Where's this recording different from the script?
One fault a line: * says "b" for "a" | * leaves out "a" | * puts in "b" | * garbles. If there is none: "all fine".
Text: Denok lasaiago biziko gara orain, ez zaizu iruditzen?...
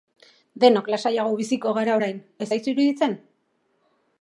all fine